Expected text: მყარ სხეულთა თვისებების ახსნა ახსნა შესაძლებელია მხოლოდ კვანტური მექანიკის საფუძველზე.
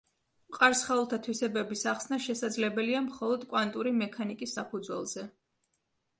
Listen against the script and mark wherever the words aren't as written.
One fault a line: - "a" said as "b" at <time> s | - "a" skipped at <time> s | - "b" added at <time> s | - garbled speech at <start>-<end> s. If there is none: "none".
- "ახსნა" skipped at 2.2 s